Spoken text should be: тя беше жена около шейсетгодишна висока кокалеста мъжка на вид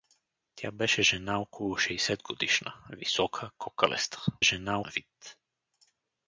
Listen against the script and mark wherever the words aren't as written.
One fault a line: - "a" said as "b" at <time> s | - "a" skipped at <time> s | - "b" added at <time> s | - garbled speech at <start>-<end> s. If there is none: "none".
- "мъжка" said as "жена" at 4.4 s